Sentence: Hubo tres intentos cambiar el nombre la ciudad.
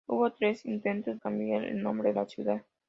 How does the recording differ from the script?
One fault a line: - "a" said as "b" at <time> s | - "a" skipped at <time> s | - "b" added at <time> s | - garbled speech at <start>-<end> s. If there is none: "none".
none